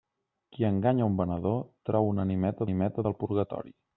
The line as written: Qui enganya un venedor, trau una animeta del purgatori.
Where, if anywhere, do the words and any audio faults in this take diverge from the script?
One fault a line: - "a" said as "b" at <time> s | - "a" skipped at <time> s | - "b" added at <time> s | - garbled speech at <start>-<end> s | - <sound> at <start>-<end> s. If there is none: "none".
- "animeta" added at 2.7 s